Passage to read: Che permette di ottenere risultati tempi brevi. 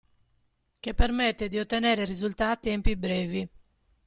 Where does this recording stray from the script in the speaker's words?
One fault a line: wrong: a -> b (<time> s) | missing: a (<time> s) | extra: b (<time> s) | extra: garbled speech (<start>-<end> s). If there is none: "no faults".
no faults